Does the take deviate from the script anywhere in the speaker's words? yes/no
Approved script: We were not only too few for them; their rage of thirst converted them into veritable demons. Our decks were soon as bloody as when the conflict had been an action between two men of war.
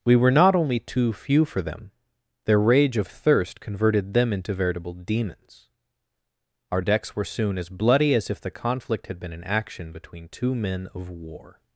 yes